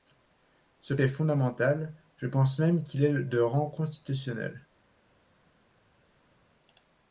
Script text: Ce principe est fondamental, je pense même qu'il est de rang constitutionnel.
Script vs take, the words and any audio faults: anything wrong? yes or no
yes